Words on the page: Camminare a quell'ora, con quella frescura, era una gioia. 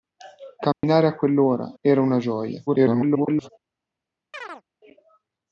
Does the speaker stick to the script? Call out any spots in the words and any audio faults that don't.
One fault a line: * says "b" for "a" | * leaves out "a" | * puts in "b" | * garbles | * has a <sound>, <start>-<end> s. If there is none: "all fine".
* has a dropout, 0.7-0.8 s
* leaves out "con quella frescura"
* garbles
* has a chirp, 4.3-4.6 s